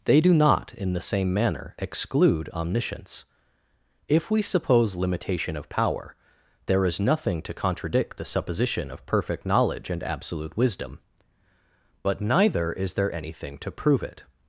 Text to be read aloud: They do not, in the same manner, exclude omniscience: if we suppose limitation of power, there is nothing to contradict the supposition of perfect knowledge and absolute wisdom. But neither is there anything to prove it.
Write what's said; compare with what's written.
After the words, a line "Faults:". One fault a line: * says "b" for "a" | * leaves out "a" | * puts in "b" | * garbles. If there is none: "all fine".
They do not, in the same manner, exclude omniscience: if we suppose limitation of power, there is nothing to contradict the supposition of perfect knowledge and absolute wisdom. But neither is there anything to prove it.
Faults:
all fine